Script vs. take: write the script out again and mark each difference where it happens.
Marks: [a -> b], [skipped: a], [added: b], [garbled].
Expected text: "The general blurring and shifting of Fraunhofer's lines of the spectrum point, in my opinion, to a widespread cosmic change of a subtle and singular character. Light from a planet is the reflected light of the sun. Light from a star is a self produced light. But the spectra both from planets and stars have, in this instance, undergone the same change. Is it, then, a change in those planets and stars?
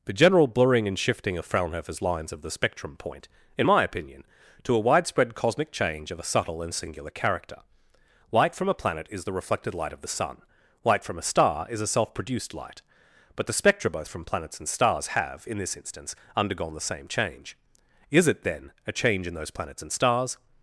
"The general blurring and shifting of Fraunhofer's lines of the spectrum point, in my opinion, to a widespread cosmic change of a subtle and singular character. Light from a planet is the reflected light of the sun. Light from a star is a self produced light. But the spectra both from planets and stars have, in this instance, undergone the same change. Is it, then, a change in those planets and stars?